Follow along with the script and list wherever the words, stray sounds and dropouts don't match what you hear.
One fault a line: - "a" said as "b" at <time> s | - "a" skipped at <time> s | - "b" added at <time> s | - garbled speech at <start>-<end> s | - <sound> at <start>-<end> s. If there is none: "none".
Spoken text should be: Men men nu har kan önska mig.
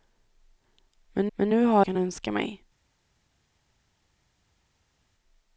none